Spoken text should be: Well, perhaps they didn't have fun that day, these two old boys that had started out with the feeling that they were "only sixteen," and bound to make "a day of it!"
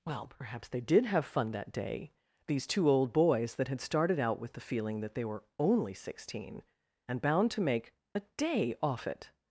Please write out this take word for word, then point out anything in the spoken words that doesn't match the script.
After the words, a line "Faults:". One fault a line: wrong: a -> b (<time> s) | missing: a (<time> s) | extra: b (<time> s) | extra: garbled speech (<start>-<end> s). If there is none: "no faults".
Well, perhaps they did have fun that day, these two old boys that had started out with the feeling that they were "only sixteen," and bound to make "a day off it!"
Faults:
wrong: didn't -> did (0.8 s)
wrong: of -> off (8.8 s)